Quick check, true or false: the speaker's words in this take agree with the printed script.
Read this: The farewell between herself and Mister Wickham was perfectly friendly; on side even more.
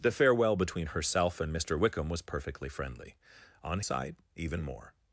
true